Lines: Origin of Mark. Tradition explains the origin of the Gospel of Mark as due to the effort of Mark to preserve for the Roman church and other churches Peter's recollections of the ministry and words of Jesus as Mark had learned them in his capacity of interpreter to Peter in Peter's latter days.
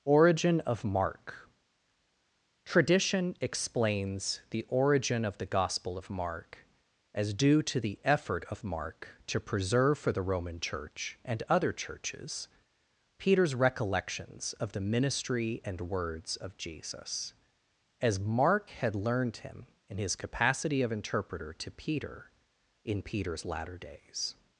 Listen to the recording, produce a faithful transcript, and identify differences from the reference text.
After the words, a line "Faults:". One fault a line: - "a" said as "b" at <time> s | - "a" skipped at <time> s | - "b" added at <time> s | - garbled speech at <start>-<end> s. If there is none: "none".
Origin of Mark. Tradition explains the origin of the Gospel of Mark as due to the effort of Mark to preserve for the Roman church and other churches Peter's recollections of the ministry and words of Jesus as Mark had learned him in his capacity of interpreter to Peter in Peter's latter days.
Faults:
- "them" said as "him" at 19.4 s